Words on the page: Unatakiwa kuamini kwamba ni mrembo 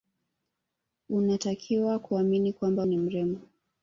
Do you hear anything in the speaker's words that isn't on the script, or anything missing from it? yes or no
no